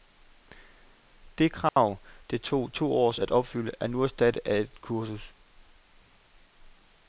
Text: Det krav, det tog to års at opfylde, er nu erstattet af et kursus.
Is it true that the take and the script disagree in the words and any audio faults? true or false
true